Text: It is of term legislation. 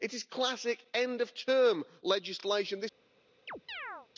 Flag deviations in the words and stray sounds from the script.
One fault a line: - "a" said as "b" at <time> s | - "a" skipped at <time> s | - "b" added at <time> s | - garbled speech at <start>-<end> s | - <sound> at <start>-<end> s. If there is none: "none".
- "classic end" added at 0.2 s
- chirp at 3.5-4.1 s